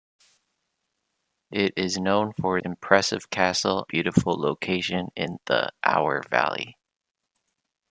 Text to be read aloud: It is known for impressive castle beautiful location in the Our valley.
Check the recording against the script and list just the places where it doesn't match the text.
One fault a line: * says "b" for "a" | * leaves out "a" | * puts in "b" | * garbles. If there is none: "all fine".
all fine